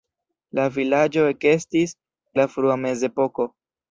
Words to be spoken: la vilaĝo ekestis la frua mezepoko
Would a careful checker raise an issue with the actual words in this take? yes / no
no